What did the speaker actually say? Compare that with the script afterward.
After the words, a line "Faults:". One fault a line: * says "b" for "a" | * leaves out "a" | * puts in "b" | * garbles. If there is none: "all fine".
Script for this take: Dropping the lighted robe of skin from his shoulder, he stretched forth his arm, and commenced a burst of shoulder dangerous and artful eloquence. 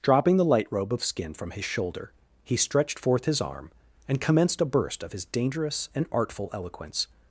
Dropping the light robe of skin from his shoulder, he stretched forth his arm, and commenced a burst of his dangerous and artful eloquence.
Faults:
* says "light" for "lighted"
* says "his" for "shoulder"